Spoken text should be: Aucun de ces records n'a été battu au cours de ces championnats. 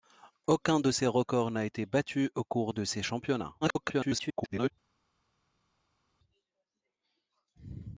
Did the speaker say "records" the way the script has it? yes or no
yes